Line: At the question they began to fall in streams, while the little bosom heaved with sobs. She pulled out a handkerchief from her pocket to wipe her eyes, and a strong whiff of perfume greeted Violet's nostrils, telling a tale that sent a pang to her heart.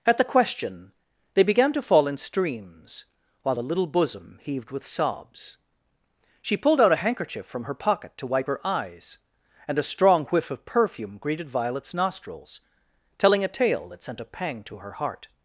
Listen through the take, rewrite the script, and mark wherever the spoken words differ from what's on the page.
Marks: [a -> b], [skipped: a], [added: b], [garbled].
At the question they began to fall in streams, while the little bosom heaved with sobs. She pulled out a handkerchief from her pocket to wipe her eyes, and a strong whiff of perfume greeted Violet's nostrils, telling a tale that sent a pang to her heart.